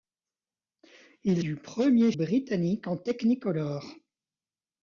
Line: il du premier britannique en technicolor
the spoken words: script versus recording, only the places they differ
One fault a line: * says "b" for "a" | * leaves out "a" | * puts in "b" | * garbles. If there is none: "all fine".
all fine